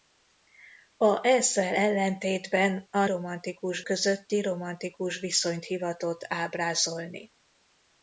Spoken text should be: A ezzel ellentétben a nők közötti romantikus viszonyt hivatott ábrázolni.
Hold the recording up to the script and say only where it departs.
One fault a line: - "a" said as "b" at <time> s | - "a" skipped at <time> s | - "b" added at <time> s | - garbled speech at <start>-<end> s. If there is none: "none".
- "nők" said as "romantikus" at 3.0 s